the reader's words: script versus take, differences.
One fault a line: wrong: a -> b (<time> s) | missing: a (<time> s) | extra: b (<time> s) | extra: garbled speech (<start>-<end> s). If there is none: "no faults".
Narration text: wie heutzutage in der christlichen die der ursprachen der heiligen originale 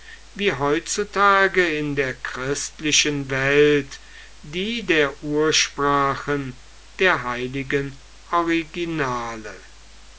extra: welt (3.3 s)